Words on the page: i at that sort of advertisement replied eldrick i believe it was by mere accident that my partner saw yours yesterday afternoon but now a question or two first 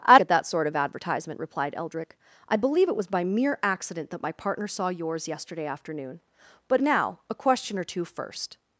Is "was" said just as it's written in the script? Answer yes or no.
yes